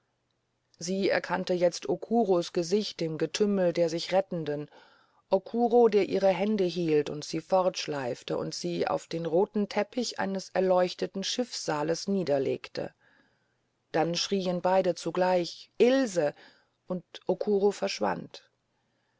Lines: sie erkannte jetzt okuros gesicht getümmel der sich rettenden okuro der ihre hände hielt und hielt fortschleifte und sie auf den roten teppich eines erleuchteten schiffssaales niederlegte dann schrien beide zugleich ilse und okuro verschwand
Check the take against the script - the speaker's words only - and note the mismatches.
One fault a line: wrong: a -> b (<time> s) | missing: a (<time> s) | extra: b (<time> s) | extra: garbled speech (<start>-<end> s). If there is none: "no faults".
extra: im (3.0 s)
wrong: hielt -> sie (7.2 s)